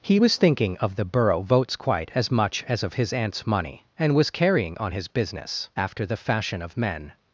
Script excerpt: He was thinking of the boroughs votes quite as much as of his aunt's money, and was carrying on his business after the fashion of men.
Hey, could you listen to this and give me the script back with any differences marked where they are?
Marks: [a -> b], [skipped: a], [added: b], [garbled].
He was thinking of the [boroughs -> borough] votes quite as much as of his aunt's money, and was carrying on his business after the fashion of men.